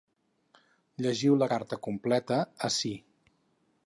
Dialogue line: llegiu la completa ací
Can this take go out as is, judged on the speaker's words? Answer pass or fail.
fail